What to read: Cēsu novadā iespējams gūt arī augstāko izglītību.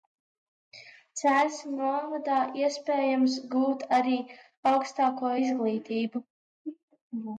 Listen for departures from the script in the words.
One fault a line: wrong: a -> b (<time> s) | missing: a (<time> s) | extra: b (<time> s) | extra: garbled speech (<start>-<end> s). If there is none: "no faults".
no faults